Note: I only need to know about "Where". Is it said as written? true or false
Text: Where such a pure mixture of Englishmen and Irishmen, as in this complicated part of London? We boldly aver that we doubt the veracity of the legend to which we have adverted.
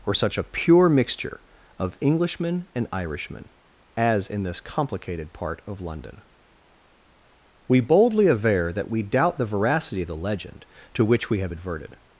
false